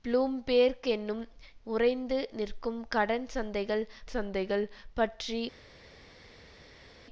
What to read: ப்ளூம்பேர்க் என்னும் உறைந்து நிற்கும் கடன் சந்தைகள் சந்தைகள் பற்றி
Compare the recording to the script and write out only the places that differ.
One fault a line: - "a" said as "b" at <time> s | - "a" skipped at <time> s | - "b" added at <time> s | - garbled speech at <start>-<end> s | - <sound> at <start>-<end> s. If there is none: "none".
none